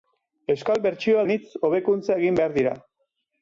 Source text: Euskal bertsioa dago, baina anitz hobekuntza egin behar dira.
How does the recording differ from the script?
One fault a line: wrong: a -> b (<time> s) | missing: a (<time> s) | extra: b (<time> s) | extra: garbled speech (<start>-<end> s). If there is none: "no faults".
missing: dago baina (1.2 s)